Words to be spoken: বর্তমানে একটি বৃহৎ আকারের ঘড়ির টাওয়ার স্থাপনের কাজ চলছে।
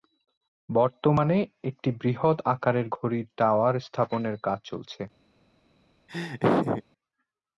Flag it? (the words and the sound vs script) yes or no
yes